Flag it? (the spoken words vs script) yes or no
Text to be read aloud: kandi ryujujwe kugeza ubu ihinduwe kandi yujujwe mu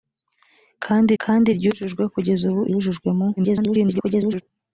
yes